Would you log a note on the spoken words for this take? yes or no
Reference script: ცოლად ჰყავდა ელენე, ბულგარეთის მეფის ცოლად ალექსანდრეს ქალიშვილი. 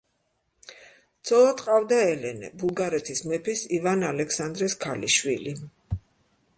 yes